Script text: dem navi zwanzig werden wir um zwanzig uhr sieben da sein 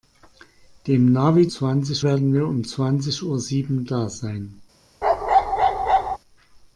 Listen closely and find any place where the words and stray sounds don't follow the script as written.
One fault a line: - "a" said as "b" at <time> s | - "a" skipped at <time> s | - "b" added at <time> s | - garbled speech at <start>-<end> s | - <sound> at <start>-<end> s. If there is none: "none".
- bark at 5.0-6.2 s